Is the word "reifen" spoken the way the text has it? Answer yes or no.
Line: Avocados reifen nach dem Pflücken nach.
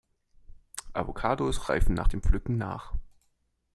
yes